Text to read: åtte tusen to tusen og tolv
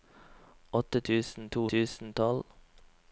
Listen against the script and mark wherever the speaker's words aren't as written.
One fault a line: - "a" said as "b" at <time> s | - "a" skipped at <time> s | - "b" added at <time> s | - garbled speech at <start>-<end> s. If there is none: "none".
none